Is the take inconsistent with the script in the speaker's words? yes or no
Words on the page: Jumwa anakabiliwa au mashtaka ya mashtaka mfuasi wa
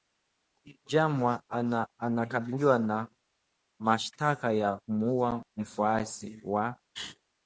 yes